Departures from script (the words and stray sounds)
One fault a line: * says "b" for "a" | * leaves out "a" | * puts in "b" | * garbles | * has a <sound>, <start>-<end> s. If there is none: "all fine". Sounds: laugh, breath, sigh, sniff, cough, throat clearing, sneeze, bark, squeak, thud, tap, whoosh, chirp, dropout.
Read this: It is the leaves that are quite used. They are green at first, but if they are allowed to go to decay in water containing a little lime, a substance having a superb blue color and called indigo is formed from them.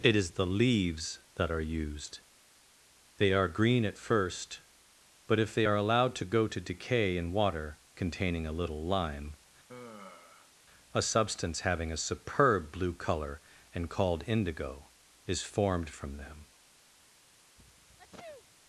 * leaves out "quite"
* has a sigh, 9.7-10.5 s
* has a sneeze, 17.6-18.6 s